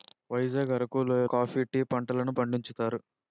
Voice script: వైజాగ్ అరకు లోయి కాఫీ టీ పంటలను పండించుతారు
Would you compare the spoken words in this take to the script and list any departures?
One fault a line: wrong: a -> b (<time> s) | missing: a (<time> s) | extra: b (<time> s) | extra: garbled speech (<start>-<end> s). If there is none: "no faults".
no faults